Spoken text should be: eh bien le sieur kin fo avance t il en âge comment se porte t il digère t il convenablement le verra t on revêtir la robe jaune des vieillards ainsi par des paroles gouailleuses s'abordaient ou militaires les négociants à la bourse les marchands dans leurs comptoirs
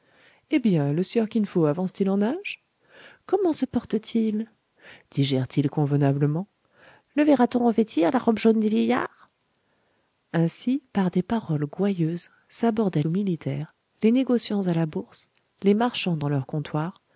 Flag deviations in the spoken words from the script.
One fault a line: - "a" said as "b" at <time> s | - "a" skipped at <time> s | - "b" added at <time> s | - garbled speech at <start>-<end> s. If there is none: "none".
none